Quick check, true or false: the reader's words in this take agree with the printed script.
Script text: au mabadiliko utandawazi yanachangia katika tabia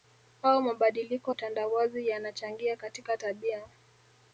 true